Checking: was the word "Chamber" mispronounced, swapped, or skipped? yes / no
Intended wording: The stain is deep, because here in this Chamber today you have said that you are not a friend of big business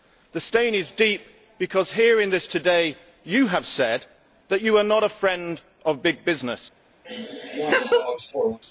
yes